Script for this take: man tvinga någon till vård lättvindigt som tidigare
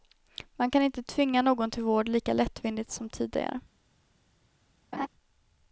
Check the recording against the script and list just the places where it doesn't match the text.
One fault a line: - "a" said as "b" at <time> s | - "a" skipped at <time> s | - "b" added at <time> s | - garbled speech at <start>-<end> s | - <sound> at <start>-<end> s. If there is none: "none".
- "kan inte" added at 0.7 s
- "lika" added at 2.1 s
- laugh at 4.9-5.1 s